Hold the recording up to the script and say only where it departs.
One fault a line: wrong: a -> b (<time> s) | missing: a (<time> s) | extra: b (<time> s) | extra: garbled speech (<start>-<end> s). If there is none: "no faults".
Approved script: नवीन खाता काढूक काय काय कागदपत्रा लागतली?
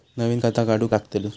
missing: काय काय कागदपत्रा (0.9 s)